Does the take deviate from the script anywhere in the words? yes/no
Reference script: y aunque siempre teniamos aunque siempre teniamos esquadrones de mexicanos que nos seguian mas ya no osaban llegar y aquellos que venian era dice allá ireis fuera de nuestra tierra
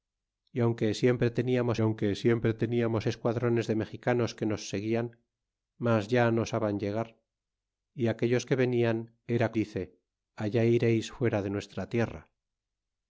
no